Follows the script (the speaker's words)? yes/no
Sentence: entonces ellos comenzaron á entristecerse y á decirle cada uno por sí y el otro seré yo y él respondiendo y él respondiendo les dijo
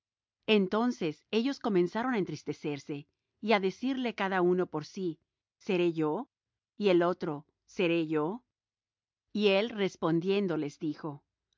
no